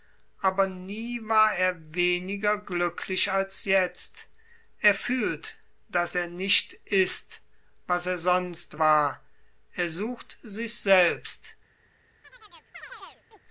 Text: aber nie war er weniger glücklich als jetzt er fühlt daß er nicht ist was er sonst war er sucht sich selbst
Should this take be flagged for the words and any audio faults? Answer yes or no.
yes